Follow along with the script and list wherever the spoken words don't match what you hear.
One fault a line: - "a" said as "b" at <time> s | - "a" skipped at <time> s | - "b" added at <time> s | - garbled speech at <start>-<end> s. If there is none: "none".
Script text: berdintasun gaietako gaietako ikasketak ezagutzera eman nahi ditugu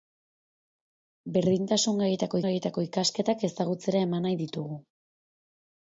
none